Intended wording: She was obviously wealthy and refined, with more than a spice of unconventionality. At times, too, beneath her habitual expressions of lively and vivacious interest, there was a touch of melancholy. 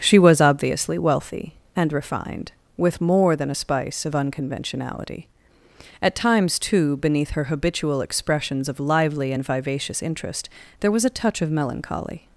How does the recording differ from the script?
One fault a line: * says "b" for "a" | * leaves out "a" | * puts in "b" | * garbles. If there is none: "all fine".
all fine